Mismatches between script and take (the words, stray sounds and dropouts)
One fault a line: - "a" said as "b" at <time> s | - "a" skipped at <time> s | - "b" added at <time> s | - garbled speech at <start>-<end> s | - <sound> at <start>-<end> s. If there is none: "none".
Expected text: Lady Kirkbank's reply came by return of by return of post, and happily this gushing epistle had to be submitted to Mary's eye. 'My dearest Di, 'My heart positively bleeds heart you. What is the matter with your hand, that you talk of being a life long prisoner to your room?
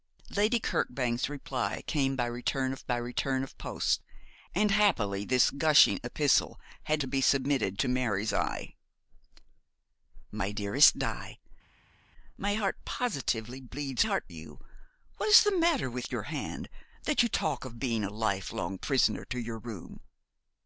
none